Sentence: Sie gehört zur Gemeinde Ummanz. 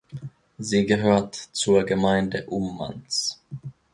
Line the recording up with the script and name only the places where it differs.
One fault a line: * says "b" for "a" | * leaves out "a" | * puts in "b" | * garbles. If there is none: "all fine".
all fine